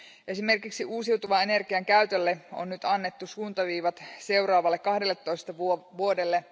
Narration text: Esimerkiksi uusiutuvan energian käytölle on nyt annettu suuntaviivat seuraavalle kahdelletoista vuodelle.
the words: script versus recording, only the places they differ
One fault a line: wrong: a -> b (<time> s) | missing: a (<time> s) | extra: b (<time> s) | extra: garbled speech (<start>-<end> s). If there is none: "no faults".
no faults